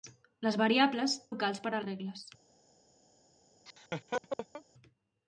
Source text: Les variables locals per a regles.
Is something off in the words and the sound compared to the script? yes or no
yes